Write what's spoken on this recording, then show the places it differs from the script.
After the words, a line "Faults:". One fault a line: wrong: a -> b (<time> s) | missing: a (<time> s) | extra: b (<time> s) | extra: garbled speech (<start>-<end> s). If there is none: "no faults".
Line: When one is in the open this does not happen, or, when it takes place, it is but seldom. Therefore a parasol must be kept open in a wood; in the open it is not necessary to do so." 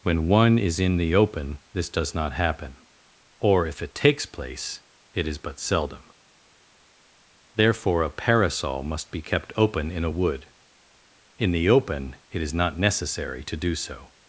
When one is in the open this does not happen, or, if it takes place, it is but seldom. Therefore a parasol must be kept open in a wood; in the open it is not necessary to do so."
Faults:
wrong: when -> if (3.7 s)